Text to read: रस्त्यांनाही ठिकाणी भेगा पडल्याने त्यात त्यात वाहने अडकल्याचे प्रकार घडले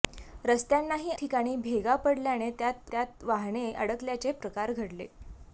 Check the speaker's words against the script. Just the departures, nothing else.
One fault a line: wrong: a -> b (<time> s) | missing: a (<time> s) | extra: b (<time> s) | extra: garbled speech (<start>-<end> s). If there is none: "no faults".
no faults